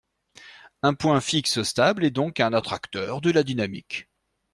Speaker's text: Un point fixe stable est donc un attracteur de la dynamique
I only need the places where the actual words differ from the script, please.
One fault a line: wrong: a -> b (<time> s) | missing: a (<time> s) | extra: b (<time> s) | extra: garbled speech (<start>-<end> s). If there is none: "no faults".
no faults